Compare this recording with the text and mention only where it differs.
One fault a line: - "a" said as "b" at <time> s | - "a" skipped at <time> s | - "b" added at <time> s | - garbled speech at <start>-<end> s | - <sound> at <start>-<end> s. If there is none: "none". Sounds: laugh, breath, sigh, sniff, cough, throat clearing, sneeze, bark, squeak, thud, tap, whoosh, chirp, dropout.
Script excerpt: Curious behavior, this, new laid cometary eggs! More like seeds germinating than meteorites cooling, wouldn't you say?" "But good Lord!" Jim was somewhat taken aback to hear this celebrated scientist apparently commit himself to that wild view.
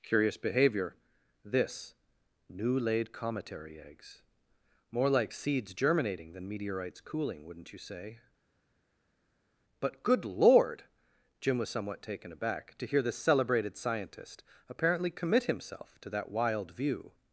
none